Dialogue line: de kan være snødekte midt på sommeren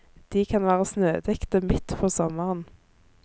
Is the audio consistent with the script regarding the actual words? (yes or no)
yes